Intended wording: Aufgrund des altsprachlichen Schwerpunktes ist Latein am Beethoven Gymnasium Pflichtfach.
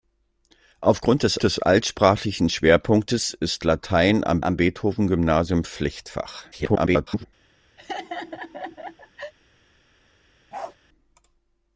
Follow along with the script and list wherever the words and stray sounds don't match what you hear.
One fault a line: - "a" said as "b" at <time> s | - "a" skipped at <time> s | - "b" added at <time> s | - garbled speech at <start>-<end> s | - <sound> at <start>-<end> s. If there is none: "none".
- "des" added at 1.4 s
- "am" added at 4.4 s
- garbled speech at 6.5-7.3 s
- laugh at 7.8-9.3 s
- bark at 10.5-10.8 s